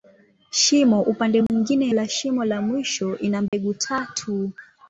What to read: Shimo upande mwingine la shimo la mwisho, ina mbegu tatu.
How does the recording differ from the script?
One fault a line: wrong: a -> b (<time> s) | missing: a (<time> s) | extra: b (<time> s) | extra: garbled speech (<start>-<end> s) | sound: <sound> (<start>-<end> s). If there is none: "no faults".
sound: dropout (1.5-1.5 s)
sound: dropout (3.5-3.5 s)